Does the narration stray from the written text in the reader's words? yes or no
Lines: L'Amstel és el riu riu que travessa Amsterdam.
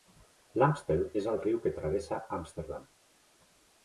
yes